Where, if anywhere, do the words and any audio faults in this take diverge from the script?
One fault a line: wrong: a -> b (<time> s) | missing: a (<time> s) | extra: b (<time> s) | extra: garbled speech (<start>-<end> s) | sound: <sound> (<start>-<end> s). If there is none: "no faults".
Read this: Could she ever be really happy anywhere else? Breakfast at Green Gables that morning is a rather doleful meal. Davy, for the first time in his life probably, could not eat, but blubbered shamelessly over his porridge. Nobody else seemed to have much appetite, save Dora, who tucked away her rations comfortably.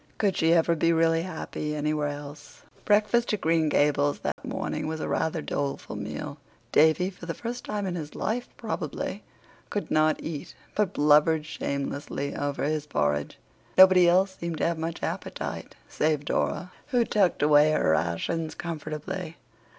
sound: dropout (4.3-4.4 s)
wrong: is -> was (4.9 s)